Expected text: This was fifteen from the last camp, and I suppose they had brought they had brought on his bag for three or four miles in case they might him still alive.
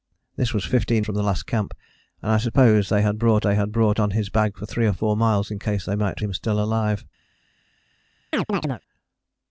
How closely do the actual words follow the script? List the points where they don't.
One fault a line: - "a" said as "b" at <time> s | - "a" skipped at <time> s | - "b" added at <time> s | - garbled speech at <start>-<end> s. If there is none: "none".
none